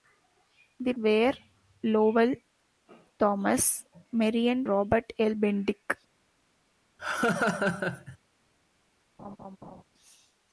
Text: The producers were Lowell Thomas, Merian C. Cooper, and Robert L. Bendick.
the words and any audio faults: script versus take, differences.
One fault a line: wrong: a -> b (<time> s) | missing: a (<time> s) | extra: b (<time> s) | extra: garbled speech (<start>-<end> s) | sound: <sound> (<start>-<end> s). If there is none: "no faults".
missing: producers (0.9 s)
missing: C Cooper and (4.7 s)
sound: laugh (7.0-8.2 s)
sound: laugh (9.2-9.8 s)